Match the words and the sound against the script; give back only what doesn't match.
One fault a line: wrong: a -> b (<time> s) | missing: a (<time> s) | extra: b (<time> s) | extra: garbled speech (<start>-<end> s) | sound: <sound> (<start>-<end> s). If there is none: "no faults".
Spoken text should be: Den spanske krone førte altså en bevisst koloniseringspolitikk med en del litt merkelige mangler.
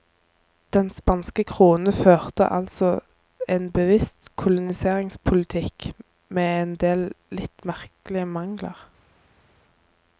no faults